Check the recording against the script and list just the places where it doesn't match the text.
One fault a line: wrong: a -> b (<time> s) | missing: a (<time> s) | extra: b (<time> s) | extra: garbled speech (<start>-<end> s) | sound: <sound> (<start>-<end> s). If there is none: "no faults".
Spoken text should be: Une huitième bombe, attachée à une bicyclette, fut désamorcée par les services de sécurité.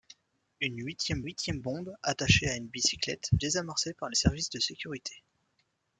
extra: huitième (1.2 s)
missing: fut (3.3 s)